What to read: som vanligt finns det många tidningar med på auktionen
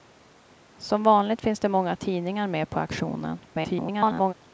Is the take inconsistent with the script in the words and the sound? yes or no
yes